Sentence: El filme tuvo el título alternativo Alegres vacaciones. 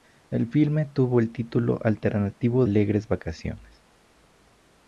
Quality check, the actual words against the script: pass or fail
pass